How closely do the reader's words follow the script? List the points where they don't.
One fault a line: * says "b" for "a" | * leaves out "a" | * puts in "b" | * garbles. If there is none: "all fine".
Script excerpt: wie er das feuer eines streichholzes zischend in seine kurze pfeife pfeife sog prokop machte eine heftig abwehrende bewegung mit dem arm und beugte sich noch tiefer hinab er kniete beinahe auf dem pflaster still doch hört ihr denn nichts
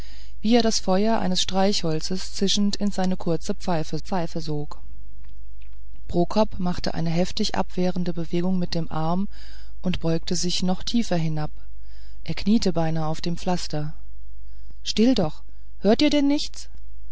all fine